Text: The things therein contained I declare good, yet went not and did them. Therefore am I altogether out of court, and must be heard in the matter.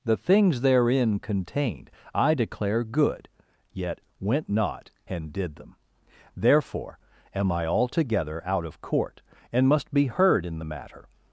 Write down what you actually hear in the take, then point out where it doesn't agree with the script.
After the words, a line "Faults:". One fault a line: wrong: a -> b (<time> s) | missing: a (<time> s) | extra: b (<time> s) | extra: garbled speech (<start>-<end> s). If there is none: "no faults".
The things therein contained I declare good, yet went not and did them. Therefore am I altogether out of court, and must be heard in the matter.
Faults:
no faults